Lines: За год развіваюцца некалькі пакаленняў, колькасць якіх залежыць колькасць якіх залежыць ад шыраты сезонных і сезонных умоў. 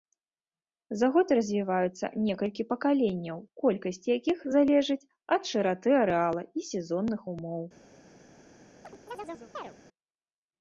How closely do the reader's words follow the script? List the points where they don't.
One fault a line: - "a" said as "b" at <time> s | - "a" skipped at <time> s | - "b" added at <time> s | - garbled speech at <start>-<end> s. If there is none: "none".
- "колькасць якіх залежыць" skipped at 5.0 s
- "сезонных" said as "арэала" at 6.0 s